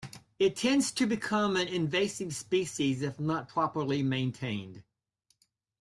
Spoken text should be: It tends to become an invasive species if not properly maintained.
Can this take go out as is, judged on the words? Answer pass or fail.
pass